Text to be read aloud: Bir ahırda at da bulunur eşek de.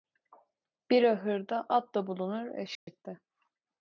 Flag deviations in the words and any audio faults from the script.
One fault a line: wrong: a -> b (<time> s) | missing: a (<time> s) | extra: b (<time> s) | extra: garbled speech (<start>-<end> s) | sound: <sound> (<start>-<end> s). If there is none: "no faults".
sound: dropout (2.7-2.9 s)